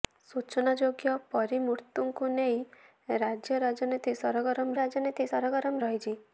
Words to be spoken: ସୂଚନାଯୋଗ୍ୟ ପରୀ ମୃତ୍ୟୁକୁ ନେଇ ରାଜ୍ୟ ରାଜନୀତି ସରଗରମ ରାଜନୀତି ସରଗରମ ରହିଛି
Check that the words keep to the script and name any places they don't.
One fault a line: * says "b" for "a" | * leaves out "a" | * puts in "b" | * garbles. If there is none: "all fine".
all fine